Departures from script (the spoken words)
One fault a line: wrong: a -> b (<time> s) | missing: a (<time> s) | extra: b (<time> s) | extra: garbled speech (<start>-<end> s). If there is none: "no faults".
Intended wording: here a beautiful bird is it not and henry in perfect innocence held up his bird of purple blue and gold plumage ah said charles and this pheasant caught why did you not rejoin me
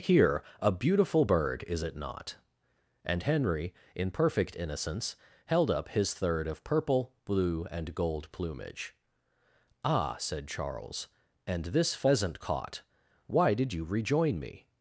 wrong: bird -> third (6.1 s)
missing: not (13.8 s)